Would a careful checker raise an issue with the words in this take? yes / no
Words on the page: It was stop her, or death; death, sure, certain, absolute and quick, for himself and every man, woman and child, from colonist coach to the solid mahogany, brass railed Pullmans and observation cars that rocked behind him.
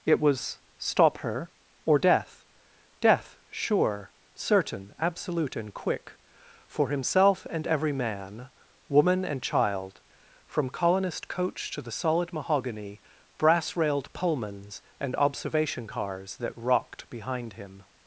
no